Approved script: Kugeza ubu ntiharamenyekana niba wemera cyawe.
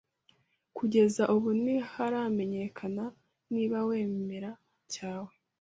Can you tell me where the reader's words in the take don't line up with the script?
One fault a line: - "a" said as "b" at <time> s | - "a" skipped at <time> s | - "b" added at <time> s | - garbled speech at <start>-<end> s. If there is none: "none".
none